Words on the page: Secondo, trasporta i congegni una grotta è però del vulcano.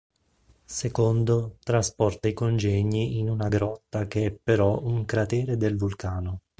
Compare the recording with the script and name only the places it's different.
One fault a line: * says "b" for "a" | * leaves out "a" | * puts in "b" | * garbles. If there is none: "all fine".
* puts in "in"
* puts in "che"
* puts in "un cratere"